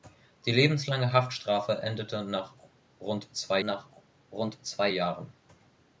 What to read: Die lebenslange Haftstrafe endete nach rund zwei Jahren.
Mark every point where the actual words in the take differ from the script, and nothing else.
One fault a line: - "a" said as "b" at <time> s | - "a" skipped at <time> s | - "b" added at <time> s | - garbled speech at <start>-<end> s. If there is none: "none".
- "nach rund zwei" added at 3.6 s